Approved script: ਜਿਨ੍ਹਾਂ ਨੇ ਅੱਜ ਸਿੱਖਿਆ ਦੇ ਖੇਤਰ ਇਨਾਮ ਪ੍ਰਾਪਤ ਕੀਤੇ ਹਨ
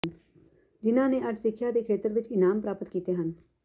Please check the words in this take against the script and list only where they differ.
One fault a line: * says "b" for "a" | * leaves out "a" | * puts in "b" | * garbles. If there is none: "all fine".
* puts in "ਵਿੱਚ"